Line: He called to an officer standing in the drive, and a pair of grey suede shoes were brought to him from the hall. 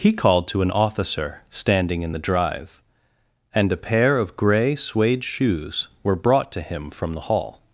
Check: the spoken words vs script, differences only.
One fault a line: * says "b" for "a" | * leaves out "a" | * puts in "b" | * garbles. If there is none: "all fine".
all fine